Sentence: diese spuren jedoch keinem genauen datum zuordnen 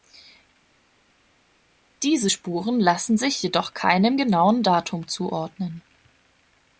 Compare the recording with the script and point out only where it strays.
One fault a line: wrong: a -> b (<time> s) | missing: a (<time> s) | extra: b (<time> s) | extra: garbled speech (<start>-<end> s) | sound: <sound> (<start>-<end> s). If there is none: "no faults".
extra: lassen sich (2.8 s)